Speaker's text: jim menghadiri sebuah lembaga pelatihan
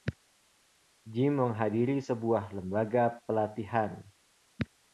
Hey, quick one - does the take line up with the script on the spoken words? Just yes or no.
yes